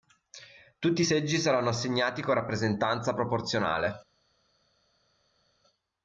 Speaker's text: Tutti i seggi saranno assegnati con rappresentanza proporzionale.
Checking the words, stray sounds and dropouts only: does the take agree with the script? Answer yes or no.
yes